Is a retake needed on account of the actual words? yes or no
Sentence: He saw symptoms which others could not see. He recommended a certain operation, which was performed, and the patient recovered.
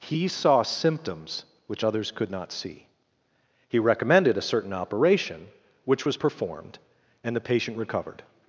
no